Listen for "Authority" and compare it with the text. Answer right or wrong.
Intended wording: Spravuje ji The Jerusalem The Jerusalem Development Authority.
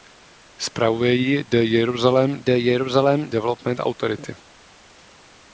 right